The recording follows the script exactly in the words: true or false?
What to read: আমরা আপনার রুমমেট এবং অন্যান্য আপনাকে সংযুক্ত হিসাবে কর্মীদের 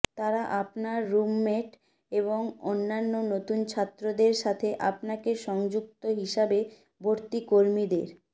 false